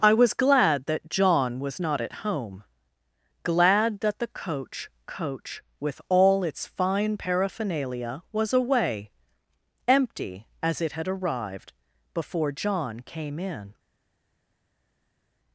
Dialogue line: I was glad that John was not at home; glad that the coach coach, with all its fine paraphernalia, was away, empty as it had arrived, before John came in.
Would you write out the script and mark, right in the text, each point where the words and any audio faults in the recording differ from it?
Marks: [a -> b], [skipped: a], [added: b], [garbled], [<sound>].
I was glad that John was not at home; glad that the coach coach, with all its fine paraphernalia, was away, empty as it had arrived, before John came in.